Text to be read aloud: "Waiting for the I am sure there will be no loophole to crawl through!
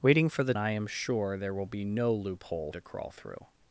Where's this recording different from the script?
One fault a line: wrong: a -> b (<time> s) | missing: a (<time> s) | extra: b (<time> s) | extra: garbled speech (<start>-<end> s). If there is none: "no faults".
no faults